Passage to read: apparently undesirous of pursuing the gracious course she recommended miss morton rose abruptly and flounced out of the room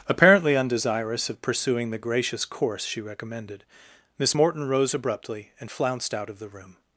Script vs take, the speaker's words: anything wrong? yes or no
no